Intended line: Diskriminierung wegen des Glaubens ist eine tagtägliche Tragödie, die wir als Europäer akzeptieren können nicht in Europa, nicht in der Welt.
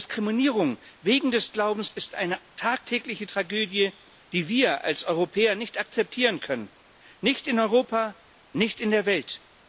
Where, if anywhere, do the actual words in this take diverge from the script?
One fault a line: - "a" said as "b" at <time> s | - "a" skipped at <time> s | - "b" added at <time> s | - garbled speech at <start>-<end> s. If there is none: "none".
- "nicht" added at 5.6 s